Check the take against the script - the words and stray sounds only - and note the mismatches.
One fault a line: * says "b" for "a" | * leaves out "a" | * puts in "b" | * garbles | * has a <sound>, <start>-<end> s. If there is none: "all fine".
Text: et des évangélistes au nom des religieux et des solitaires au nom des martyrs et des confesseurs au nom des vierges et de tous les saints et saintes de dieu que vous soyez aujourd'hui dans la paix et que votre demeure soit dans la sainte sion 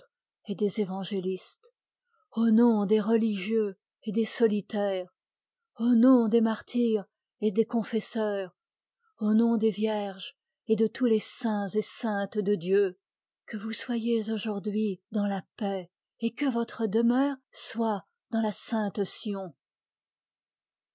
all fine